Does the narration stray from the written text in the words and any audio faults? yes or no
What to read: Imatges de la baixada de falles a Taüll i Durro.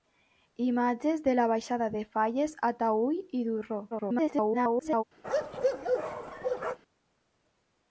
yes